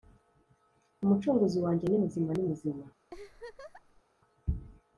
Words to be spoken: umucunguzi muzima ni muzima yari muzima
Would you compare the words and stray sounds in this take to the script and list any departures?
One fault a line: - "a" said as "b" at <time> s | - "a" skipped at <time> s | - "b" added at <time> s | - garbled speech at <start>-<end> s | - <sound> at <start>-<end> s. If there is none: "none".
- "muzima" said as "wanjye" at 1.6 s
- "yari" said as "ni" at 2.3 s
- laugh at 3.1-4.0 s